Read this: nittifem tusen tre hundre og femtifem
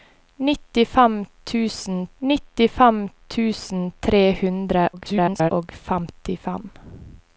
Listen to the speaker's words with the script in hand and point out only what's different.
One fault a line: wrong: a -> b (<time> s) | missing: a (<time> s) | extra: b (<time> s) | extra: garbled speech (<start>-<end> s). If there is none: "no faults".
extra: nittifem tusen (2.3 s)
extra: garbled speech (4.9-5.5 s)